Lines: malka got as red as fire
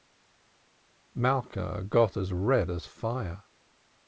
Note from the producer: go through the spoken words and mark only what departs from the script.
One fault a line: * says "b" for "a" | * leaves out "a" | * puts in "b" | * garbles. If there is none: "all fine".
all fine